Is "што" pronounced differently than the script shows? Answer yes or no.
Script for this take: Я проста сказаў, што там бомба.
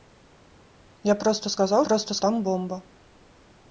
yes